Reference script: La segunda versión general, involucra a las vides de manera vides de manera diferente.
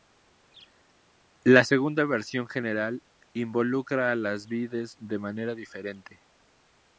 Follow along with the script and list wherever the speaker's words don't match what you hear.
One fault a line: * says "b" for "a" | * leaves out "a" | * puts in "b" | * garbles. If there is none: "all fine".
* leaves out "vides de manera"